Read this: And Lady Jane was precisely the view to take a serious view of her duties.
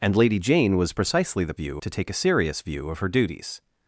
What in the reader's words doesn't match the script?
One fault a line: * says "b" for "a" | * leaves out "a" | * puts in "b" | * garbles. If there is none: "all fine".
all fine